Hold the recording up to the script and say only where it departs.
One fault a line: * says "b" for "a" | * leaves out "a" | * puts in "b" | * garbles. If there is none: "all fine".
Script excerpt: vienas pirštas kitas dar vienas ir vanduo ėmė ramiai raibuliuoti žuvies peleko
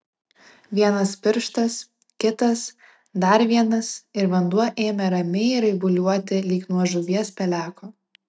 * puts in "lyg nuo"